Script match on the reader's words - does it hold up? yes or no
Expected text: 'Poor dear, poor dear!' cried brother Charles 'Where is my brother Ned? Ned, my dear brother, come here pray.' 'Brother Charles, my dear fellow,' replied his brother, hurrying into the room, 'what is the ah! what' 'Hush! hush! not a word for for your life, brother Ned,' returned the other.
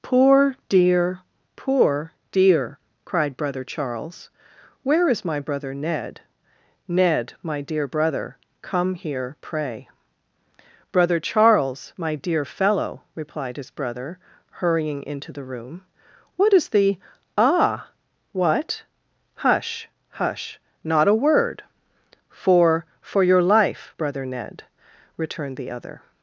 yes